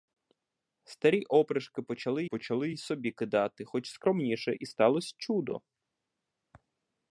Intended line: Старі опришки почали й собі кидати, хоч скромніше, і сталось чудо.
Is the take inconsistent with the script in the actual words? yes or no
yes